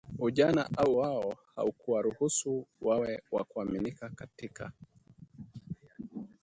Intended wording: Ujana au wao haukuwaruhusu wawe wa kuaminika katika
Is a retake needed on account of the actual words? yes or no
no